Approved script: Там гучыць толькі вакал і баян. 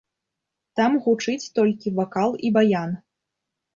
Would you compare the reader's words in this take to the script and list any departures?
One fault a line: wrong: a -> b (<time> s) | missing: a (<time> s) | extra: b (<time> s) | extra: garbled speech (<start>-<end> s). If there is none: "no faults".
no faults